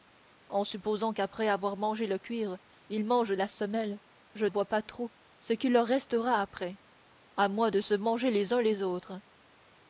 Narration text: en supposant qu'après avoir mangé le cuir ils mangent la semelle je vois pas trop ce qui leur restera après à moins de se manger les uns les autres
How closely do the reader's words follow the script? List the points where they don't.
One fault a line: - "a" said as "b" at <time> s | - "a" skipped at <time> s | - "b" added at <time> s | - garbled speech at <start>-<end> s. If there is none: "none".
none